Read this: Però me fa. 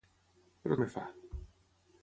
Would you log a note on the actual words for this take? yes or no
no